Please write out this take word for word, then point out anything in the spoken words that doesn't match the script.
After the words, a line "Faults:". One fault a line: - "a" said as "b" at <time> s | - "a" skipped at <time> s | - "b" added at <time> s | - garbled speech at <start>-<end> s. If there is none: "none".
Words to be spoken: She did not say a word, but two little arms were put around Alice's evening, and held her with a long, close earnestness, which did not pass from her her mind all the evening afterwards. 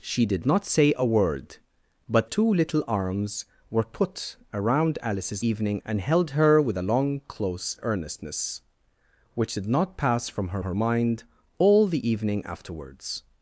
She did not say a word, but two little arms were put around Alice's evening, and held her with a long, close earnestness, which did not pass from her her mind all the evening afterwards.
Faults:
none